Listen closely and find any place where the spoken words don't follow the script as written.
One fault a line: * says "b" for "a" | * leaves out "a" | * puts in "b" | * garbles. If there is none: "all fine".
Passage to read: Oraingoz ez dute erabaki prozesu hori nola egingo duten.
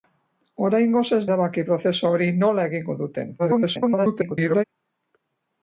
* leaves out "dute"
* garbles